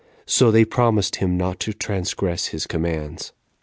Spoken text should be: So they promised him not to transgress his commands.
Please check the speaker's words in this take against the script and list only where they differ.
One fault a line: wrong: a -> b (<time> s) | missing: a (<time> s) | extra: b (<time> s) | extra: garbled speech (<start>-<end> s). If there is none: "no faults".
no faults